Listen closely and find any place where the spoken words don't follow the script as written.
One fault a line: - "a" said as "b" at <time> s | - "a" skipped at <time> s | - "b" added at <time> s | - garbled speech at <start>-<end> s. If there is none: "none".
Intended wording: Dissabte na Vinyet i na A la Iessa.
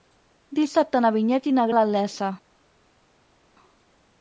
none